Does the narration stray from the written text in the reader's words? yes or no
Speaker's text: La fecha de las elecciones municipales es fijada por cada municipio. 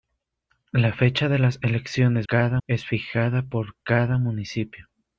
yes